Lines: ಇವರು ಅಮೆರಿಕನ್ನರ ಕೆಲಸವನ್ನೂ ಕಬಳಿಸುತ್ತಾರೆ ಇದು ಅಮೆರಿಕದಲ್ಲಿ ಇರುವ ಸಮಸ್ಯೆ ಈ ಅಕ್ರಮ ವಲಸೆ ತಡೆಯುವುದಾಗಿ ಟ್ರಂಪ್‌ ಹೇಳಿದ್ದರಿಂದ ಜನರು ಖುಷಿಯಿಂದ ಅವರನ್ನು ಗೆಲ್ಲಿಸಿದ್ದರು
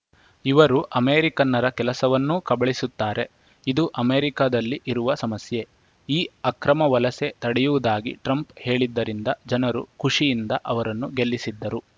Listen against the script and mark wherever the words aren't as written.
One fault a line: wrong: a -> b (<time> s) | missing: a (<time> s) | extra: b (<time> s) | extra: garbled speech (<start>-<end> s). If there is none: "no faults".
no faults